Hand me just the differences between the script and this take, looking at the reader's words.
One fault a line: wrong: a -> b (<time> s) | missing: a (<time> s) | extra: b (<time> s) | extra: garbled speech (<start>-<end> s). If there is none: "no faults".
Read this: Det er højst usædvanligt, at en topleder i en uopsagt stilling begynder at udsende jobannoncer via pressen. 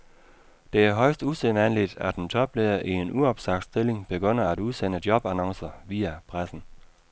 no faults